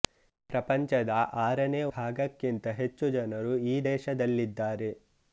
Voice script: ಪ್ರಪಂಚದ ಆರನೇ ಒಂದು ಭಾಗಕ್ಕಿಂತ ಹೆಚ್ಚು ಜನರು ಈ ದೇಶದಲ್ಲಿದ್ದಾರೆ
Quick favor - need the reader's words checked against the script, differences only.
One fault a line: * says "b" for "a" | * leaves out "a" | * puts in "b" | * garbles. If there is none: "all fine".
* leaves out "ಒಂದು"